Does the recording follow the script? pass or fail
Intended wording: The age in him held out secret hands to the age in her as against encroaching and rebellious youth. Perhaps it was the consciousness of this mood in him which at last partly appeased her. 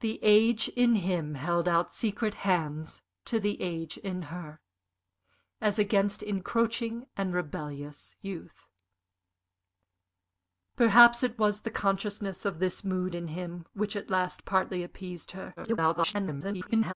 fail